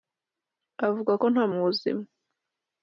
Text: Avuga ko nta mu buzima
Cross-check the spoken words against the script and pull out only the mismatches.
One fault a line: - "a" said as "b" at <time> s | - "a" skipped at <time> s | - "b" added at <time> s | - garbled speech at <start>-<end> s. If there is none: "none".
none